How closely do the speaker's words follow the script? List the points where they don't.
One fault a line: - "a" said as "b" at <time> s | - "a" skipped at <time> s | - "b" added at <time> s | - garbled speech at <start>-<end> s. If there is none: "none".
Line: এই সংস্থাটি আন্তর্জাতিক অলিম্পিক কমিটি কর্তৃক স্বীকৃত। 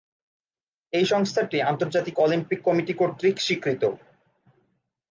none